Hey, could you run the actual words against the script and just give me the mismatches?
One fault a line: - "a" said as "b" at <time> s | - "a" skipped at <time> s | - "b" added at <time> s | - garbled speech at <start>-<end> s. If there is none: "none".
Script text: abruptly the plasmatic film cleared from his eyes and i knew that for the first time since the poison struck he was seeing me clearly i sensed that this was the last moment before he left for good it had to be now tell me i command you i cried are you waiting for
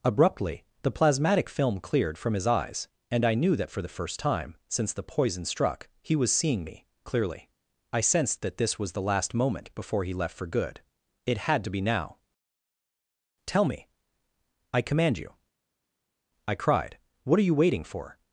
- "what" added at 17.2 s